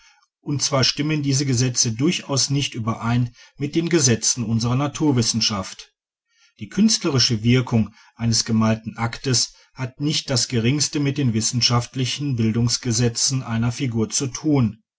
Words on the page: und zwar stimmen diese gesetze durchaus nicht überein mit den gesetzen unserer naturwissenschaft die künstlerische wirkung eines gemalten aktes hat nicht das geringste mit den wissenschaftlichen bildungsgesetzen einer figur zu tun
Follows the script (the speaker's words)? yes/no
yes